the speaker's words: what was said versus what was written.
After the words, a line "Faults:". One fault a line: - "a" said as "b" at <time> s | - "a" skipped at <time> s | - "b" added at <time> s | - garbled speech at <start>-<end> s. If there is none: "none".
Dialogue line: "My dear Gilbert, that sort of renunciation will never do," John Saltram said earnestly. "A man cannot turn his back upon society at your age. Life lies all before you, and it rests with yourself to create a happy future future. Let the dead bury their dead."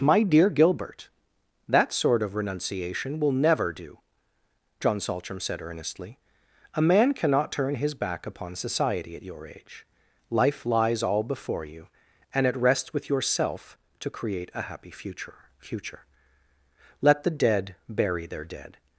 "My dear Gilbert, that sort of renunciation will never do," John Saltram said earnestly. "A man cannot turn his back upon society at your age. Life lies all before you, and it rests with yourself to create a happy future future. Let the dead bury their dead."
Faults:
none